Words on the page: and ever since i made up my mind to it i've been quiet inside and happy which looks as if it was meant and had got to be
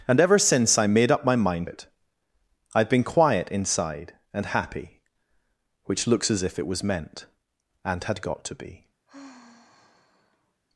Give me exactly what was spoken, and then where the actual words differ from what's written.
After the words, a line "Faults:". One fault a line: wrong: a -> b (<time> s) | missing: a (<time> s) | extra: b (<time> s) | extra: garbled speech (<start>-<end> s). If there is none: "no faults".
and ever since i made up my mind it i've been quiet inside and happy which looks as if it was meant and had got to be
Faults:
missing: to (1.7 s)